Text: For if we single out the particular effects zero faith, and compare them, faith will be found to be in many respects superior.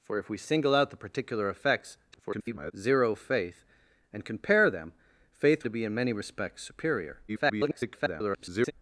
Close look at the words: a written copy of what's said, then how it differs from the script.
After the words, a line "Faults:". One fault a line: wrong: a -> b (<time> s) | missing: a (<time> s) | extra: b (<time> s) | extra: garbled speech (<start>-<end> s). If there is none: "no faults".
For if we single out the particular effects [garbled] zero faith, and compare them, faith to be in many respects superior. [garbled]
Faults:
extra: garbled speech (2.1-2.7 s)
missing: will be found (5.6 s)
extra: garbled speech (7.3-8.7 s)